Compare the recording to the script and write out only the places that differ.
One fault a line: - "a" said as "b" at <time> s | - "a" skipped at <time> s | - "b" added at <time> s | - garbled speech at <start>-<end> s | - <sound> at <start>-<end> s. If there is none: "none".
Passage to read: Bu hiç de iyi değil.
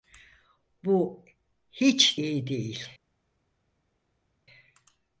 - "de" skipped at 2.2 s